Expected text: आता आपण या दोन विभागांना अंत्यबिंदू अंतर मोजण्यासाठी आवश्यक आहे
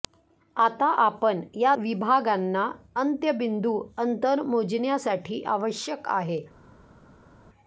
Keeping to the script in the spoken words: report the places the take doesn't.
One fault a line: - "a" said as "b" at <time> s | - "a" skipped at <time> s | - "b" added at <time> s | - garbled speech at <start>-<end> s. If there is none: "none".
- "दोन" skipped at 1.7 s